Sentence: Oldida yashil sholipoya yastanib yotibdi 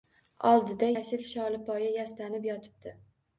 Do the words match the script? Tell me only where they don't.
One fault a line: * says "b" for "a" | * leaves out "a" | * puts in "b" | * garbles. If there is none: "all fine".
all fine